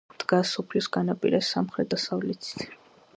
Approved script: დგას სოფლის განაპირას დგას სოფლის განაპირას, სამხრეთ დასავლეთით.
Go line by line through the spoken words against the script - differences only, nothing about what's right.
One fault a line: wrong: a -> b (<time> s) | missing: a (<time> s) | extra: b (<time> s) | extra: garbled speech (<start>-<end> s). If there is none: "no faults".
missing: დგას სოფლის განაპირას (1.5 s)